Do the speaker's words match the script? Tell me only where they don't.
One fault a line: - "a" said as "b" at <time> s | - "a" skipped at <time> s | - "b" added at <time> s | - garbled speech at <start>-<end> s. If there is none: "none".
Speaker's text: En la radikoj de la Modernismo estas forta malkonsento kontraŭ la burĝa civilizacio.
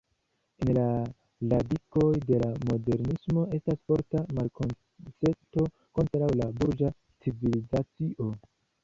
none